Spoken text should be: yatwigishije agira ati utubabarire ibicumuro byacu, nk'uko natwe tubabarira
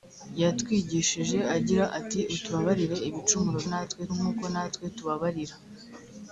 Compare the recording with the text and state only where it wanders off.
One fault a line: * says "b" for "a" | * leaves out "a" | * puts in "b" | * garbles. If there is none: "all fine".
* says "natwe" for "byacu"